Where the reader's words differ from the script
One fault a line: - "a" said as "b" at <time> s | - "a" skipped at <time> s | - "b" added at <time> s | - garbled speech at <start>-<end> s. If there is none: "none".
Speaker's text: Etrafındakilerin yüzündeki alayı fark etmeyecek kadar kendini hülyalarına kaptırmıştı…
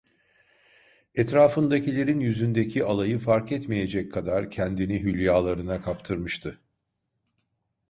none